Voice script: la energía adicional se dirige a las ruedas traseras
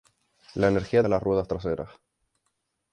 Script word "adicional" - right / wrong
wrong